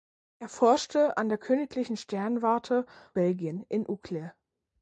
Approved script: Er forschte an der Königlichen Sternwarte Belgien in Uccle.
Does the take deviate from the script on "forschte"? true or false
false